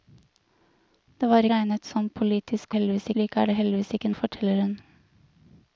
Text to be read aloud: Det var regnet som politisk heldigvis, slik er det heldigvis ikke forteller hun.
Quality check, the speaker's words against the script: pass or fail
pass